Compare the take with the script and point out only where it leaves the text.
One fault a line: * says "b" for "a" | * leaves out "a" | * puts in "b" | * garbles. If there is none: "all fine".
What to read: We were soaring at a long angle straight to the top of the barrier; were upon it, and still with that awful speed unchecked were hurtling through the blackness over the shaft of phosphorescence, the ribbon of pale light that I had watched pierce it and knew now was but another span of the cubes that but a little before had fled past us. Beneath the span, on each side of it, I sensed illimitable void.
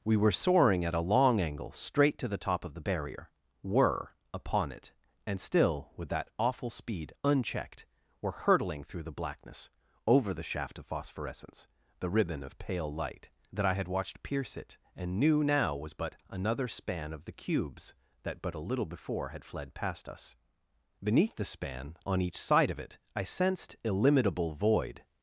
all fine